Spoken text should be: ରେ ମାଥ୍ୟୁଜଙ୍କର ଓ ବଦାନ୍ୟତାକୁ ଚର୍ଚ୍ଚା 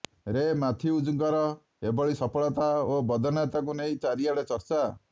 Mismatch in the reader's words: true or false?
true